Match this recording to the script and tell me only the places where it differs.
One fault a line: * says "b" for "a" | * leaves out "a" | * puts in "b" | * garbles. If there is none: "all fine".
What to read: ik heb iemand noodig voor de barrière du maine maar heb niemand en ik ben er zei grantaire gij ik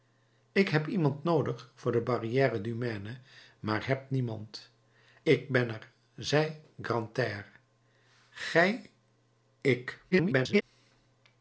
* leaves out "en"
* garbles